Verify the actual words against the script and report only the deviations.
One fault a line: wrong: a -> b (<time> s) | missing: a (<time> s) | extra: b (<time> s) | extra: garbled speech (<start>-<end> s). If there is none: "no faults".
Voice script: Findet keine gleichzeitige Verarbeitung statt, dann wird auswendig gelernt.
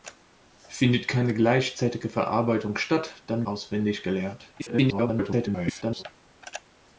missing: wird (3.5 s)
extra: garbled speech (4.6-6.0 s)